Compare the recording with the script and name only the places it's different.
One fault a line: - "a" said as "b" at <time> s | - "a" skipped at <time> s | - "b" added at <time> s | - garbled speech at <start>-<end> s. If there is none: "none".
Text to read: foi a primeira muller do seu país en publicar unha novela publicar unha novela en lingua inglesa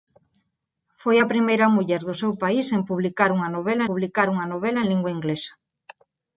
none